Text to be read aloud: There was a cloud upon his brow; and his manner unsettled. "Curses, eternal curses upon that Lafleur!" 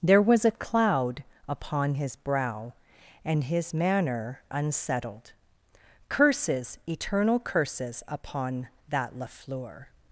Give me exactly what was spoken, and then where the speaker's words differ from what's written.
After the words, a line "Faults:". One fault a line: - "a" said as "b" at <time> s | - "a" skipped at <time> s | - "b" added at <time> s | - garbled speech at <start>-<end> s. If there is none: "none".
There was a cloud upon his brow; and his manner unsettled. "Curses, eternal curses upon that Lafleur!"
Faults:
none